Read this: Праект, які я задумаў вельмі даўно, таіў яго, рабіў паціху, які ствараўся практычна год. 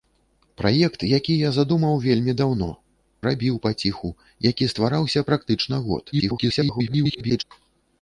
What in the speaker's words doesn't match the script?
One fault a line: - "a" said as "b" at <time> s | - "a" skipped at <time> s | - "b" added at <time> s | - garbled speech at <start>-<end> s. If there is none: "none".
- "таіў яго" skipped at 2.7 s
- garbled speech at 6.1-7.4 s